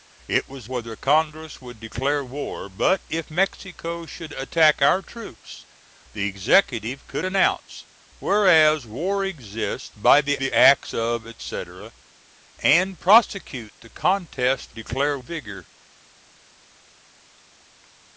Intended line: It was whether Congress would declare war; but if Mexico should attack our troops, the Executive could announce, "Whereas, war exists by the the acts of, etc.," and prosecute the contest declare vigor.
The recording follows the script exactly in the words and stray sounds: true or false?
true